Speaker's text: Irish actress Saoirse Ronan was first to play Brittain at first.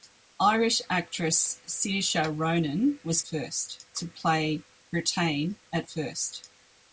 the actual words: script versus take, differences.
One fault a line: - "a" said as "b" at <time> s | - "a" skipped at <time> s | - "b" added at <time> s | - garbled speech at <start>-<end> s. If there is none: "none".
none